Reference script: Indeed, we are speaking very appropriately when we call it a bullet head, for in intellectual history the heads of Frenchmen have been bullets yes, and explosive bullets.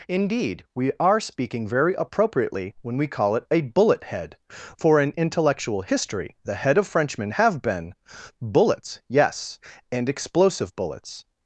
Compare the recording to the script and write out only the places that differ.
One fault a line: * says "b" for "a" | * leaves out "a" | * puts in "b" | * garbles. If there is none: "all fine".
* says "head" for "heads"